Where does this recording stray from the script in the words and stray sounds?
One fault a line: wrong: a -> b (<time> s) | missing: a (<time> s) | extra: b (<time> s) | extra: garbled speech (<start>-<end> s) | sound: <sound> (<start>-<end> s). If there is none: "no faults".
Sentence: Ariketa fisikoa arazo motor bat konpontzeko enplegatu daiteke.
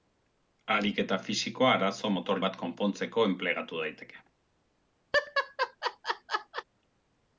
sound: laugh (5.1-6.6 s)